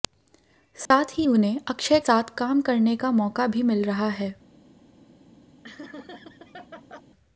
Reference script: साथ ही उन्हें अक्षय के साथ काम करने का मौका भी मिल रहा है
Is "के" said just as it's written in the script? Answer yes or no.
no